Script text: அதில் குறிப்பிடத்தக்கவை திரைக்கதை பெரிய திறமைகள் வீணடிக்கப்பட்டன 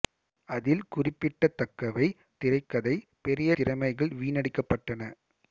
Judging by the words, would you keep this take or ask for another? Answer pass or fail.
pass